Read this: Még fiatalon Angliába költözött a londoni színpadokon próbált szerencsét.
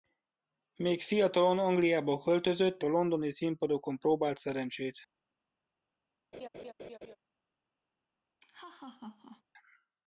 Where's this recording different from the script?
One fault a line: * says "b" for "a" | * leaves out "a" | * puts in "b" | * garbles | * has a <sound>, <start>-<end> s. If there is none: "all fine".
* has a laugh, 6.3-7.2 s
* has a laugh, 8.4-9.4 s